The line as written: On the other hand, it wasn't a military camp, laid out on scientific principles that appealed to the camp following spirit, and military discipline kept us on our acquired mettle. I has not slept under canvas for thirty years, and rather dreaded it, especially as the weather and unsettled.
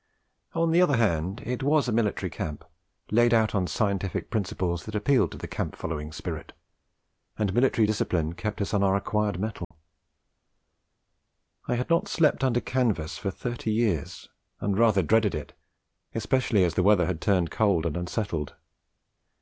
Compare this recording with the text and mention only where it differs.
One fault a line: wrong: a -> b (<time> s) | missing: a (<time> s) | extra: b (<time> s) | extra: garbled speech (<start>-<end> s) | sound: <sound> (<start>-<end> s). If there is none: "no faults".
wrong: wasn't -> was (1.6 s)
sound: dropout (9.6-9.7 s)
wrong: has -> had (11.8 s)
extra: had turned cold (17.1 s)